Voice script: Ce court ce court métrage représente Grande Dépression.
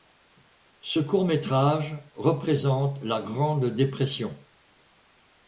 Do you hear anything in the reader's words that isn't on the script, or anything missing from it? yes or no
yes